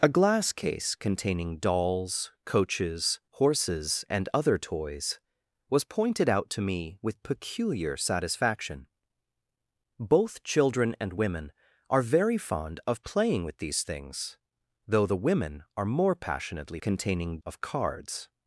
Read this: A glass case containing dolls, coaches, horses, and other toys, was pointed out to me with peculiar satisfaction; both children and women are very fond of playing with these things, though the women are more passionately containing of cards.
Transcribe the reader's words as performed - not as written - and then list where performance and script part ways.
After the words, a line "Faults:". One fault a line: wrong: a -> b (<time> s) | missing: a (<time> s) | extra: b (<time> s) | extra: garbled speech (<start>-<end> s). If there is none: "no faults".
A glass case containing dolls, coaches, horses, and other toys, was pointed out to me with peculiar satisfaction; both children and women are very fond of playing with these things, though the women are more passionately containing of cards.
Faults:
no faults